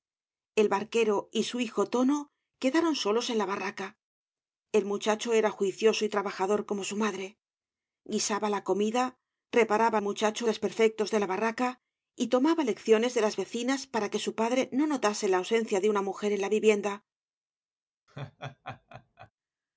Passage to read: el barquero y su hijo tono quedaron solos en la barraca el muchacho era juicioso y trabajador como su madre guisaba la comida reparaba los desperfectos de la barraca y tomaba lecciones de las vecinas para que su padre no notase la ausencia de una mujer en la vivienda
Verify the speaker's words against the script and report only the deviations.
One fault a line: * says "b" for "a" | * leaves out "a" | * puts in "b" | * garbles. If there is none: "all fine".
* says "muchacho" for "los"